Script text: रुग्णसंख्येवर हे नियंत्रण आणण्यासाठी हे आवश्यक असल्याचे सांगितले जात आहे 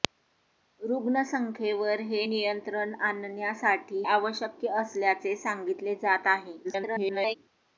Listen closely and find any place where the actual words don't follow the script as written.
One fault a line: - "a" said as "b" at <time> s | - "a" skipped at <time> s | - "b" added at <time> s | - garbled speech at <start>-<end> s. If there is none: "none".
- "हे" skipped at 4.0 s
- garbled speech at 6.6-7.3 s